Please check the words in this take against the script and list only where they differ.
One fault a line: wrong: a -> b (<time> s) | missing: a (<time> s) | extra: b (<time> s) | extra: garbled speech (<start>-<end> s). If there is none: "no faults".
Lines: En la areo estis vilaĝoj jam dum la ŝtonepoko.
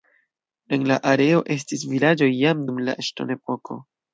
no faults